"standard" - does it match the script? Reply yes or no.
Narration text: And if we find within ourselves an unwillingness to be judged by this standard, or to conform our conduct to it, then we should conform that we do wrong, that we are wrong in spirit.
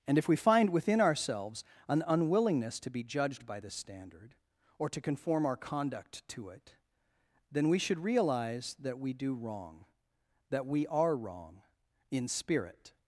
yes